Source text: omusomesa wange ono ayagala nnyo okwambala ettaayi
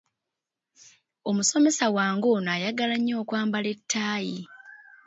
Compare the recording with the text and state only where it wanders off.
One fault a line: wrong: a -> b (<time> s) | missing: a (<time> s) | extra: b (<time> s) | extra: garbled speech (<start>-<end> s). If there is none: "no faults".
no faults